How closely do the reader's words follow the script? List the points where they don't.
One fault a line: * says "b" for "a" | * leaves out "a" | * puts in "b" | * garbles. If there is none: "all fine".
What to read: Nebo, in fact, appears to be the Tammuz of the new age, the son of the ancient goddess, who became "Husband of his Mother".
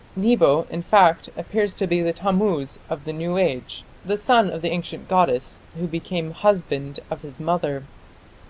all fine